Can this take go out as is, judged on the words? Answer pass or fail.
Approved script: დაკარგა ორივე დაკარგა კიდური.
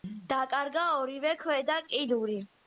fail